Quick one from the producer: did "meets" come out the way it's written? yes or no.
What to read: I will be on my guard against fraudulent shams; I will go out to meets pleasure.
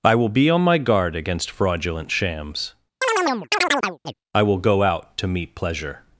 no